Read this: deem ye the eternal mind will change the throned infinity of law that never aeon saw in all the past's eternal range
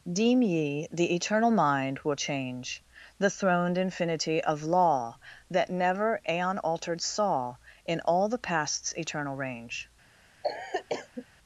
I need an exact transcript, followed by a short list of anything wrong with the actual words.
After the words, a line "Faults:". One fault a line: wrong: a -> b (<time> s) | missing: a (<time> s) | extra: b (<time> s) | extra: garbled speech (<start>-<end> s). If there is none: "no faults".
deem ye the eternal mind will change the throned infinity of law that never aeon altered saw in all the past's eternal range
Faults:
extra: altered (6.6 s)